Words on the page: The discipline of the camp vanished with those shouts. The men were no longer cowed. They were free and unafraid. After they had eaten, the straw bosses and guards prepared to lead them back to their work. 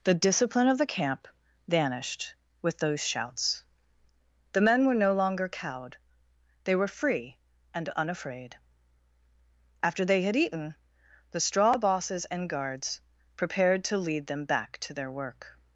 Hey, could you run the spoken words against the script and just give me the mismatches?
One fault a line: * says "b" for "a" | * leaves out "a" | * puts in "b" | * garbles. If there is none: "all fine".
all fine